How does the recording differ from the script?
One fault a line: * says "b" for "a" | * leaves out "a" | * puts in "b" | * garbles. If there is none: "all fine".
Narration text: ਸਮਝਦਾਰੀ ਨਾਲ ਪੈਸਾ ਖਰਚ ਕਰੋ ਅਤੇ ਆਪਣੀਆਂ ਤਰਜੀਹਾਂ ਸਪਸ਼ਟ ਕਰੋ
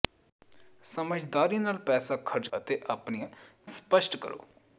* leaves out "ਕਰੋ"
* leaves out "ਤਰਜੀਹਾਂ"